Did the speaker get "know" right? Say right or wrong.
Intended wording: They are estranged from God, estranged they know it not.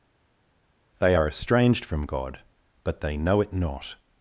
right